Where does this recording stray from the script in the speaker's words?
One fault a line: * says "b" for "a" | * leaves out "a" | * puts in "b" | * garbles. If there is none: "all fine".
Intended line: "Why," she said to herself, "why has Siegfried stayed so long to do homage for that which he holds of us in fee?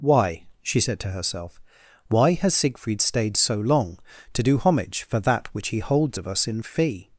all fine